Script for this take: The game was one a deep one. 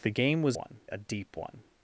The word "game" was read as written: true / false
true